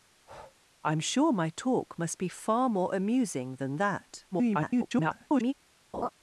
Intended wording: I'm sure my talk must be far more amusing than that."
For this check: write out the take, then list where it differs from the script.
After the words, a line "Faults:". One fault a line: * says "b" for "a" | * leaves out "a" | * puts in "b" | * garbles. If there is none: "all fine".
I'm sure my talk must be far more amusing than that." [garbled]
Faults:
* garbles